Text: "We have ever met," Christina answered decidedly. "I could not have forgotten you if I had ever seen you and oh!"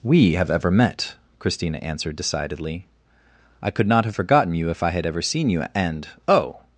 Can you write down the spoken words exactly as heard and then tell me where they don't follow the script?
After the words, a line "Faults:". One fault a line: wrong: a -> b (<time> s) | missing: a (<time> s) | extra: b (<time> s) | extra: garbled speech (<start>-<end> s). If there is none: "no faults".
"We have ever met," Christina answered decidedly. "I could not have forgotten you if I had ever seen you and oh!"
Faults:
no faults